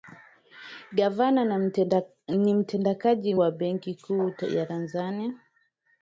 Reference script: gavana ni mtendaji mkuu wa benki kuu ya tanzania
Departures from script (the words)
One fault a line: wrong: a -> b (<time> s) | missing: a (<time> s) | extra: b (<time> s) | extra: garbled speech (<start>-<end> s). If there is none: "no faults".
missing: mkuu (3.4 s)